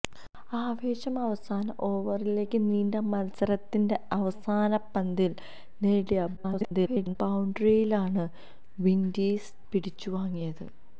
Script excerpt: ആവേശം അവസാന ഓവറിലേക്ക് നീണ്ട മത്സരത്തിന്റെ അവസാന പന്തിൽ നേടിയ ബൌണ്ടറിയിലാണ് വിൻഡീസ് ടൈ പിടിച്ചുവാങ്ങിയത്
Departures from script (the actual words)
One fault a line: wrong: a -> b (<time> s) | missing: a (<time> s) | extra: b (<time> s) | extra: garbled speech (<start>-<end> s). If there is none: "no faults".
extra: garbled speech (6.4-7.2 s)
missing: ടൈ (9.5 s)